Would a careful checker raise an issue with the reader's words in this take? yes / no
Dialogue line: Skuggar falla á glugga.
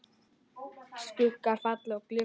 no